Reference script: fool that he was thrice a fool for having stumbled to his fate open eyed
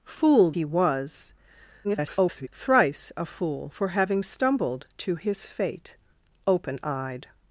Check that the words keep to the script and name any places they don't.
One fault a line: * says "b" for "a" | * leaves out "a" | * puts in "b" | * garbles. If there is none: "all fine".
* leaves out "that"
* garbles